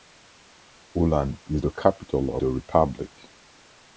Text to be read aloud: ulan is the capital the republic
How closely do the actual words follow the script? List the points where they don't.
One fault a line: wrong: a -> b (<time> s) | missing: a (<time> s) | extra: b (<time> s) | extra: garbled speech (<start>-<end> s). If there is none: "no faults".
no faults